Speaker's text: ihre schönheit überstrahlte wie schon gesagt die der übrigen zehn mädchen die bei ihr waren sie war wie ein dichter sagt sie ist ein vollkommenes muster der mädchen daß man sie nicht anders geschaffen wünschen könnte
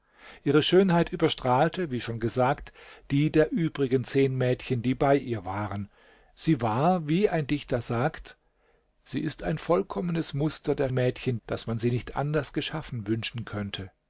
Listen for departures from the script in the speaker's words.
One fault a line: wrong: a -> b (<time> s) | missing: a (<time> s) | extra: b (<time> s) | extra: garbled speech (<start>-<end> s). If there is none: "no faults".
no faults